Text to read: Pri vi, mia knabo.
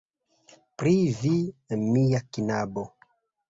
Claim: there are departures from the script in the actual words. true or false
false